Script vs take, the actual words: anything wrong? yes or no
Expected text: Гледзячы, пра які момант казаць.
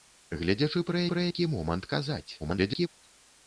yes